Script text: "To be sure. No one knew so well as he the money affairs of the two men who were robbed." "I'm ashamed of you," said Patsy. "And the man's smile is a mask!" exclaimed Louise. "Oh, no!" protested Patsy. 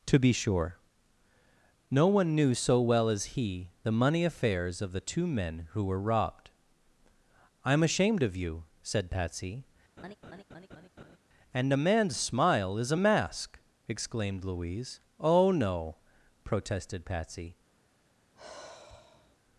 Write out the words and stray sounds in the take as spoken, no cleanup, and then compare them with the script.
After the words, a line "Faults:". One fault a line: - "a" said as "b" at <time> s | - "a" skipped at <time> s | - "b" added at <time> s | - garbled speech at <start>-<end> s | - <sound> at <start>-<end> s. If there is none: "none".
"To be sure. No one knew so well as he the money affairs of the two men who were robbed." "I'm ashamed of you," said Patsy. "And a man's smile is a mask!" exclaimed Louise. "Oh, no!" protested Patsy.
Faults:
- laugh at 10.0-11.2 s
- "the" said as "a" at 11.7 s
- sigh at 18.4-19.4 s